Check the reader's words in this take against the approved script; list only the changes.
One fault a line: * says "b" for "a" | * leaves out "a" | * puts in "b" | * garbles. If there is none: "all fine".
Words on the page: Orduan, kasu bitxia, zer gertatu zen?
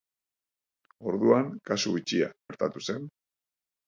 * leaves out "zer"